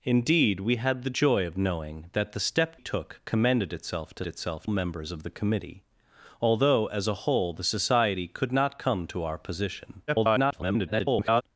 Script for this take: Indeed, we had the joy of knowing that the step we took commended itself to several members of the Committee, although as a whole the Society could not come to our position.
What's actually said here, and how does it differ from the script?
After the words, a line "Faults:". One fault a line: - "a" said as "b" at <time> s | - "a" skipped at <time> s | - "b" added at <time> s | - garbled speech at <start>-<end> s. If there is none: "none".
Indeed, we had the joy of knowing that the step took commended itself to itself members of the Committee, although as a whole the Society could not come to our position. [garbled]
Faults:
- "we" skipped at 2.8 s
- "several" said as "itself" at 4.2 s
- garbled speech at 10.1-11.4 s